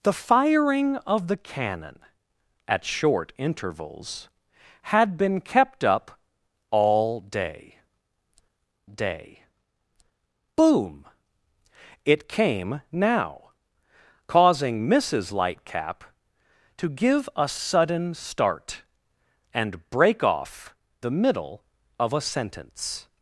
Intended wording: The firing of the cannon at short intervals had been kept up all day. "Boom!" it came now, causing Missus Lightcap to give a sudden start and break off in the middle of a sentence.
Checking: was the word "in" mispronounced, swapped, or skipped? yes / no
yes